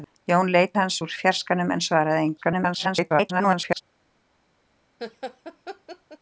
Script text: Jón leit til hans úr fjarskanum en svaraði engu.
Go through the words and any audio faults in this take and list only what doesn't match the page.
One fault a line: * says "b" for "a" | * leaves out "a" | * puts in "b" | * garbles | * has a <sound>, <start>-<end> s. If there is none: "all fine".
* leaves out "til"
* garbles
* has a laugh, 5.0-6.2 s